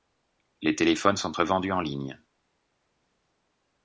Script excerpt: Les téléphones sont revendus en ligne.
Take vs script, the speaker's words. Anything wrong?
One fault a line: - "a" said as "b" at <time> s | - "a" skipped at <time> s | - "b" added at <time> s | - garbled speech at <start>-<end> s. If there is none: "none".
none